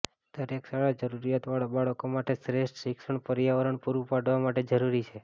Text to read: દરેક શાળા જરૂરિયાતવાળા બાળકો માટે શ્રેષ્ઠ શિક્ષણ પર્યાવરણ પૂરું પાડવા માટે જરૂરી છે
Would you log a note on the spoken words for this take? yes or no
no